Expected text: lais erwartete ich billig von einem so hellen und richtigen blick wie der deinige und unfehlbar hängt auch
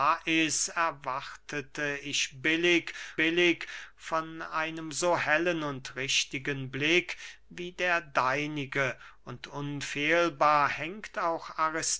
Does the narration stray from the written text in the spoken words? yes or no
yes